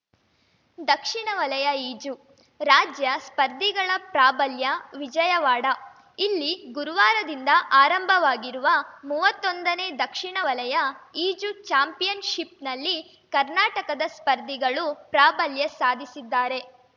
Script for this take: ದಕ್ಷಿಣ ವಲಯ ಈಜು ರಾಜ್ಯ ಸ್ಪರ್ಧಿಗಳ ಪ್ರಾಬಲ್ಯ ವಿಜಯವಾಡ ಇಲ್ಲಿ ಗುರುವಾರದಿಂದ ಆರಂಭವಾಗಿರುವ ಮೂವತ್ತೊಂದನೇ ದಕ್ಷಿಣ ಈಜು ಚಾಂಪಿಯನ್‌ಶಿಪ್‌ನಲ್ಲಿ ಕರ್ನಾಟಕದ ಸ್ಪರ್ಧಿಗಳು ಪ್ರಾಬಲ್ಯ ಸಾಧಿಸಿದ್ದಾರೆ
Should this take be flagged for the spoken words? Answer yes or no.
yes